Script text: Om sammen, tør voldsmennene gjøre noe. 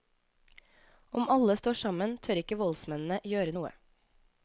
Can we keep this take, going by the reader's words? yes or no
no